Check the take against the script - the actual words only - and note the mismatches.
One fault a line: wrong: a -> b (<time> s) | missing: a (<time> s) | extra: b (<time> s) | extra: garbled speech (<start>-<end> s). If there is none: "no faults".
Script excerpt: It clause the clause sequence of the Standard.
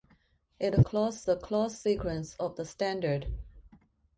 no faults